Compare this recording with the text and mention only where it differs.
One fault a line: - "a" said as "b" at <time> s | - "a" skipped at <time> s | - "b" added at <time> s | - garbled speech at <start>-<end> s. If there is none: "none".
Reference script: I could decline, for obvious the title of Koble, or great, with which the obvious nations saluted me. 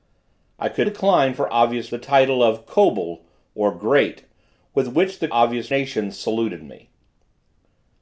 none